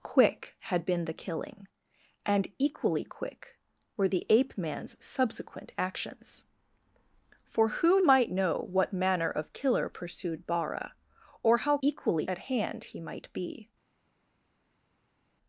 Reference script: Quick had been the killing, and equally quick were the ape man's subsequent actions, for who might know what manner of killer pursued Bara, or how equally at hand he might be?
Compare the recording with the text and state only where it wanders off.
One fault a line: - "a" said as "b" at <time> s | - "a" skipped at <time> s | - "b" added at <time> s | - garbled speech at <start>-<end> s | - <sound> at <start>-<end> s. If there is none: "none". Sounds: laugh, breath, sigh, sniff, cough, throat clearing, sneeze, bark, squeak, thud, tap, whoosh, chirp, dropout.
none